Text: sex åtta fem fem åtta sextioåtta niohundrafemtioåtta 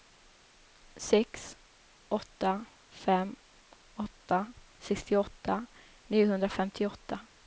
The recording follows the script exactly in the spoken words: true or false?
false